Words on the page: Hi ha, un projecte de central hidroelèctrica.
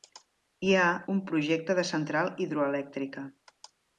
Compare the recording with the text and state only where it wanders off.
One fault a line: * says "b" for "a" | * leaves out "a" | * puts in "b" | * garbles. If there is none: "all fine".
all fine